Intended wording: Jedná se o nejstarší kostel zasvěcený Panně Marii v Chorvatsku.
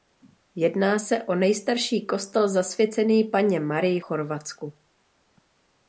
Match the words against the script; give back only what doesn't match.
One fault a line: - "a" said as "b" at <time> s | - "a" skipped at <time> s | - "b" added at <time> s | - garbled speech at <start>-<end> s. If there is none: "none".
- "v" skipped at 4.0 s